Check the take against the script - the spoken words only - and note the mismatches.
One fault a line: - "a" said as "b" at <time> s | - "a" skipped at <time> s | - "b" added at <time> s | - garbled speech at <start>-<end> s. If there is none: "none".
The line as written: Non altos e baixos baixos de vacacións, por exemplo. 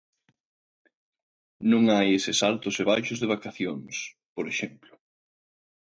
- "hai eses" added at 1.9 s
- "baixos" skipped at 3.2 s